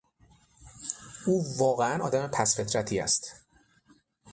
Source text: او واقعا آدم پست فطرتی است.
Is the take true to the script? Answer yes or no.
yes